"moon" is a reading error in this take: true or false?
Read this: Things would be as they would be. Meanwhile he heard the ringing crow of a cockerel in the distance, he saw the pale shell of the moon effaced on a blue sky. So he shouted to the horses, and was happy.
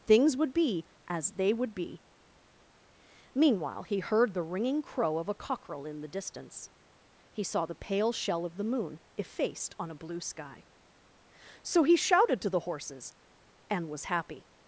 false